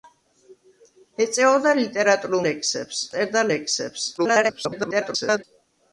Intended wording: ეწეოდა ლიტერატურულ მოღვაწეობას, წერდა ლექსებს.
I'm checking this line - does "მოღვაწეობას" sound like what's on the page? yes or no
no